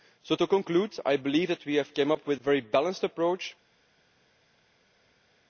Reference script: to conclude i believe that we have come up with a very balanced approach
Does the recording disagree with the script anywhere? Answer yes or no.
yes